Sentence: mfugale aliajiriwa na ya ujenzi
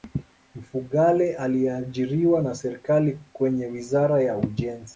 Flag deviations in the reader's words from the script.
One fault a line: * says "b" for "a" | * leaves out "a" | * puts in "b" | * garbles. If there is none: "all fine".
* puts in "serikali kwenye wizara"